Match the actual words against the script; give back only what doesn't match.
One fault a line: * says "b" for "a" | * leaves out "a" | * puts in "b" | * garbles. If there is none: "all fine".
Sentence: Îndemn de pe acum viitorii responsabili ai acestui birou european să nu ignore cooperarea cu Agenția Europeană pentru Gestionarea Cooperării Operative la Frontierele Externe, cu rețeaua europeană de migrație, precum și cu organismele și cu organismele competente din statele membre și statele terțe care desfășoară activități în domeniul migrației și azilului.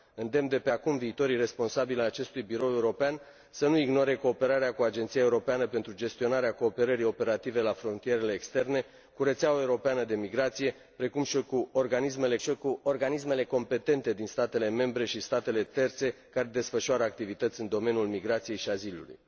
all fine